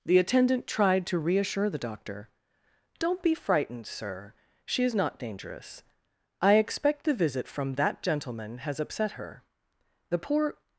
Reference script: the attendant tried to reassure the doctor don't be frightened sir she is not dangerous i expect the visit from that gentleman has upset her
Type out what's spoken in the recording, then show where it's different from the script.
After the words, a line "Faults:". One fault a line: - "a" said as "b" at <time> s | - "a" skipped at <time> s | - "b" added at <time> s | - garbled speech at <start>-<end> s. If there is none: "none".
the attendant tried to reassure the doctor don't be frightened sir she is not dangerous i expect the visit from that gentleman has upset her the poor
Faults:
- "the poor" added at 10.1 s